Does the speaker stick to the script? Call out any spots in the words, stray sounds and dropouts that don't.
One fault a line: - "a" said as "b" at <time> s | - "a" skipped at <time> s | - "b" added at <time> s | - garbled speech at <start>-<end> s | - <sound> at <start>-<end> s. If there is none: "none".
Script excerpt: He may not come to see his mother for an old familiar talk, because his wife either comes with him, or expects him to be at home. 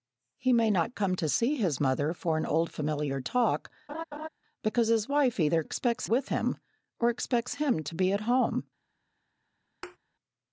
- laugh at 3.9-4.3 s
- "comes" said as "expects" at 5.6 s
- thud at 9.8-10.0 s